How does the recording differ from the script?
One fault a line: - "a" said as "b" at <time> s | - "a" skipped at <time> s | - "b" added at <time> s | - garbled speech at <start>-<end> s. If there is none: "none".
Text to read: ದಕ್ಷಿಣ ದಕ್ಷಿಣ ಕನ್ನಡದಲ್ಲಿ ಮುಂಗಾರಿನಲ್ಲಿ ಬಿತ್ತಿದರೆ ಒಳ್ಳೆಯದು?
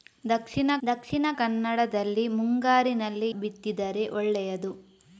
none